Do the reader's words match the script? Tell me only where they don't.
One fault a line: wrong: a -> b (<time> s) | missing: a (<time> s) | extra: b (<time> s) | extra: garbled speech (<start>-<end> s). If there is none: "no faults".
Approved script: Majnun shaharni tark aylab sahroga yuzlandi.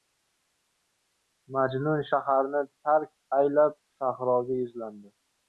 no faults